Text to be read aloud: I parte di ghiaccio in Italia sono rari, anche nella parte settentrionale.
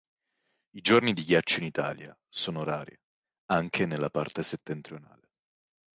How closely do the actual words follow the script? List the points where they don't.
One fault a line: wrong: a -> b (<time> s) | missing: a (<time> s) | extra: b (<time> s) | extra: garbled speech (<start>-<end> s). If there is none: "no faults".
wrong: parte -> giorni (0.8 s)